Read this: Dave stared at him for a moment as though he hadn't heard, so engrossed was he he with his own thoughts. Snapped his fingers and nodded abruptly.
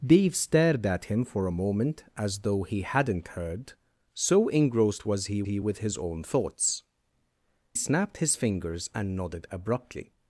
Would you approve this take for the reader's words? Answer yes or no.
yes